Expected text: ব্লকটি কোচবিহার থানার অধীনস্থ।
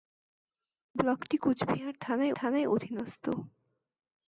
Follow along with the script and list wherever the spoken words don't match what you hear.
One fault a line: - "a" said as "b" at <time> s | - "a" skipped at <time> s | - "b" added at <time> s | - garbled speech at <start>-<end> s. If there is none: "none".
- "থানার" added at 2.4 s